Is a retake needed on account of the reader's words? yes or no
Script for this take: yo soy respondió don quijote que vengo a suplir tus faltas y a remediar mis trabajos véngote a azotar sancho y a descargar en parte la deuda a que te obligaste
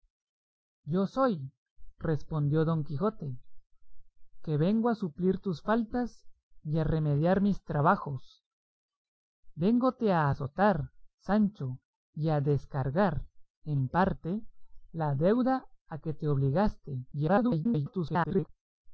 yes